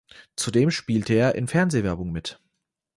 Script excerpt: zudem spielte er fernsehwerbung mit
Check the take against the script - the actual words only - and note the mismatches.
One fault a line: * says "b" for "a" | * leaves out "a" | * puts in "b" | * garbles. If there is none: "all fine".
* puts in "in"